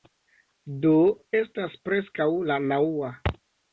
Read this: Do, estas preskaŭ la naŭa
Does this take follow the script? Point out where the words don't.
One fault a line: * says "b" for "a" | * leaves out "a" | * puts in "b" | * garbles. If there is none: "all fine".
all fine